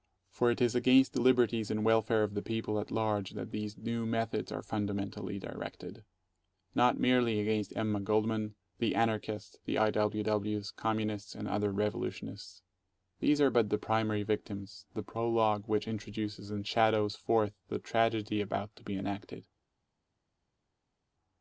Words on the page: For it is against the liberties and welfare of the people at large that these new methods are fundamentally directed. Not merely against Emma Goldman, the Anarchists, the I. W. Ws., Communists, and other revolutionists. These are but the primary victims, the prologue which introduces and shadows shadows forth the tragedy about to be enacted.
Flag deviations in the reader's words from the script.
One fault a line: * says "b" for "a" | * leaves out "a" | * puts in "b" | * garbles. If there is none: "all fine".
* leaves out "shadows"